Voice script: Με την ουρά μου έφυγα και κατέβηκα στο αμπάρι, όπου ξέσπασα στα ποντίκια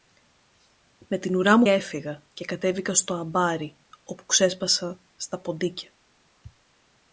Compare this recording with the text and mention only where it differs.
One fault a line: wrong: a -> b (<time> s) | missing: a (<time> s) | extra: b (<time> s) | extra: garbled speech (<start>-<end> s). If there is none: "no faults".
no faults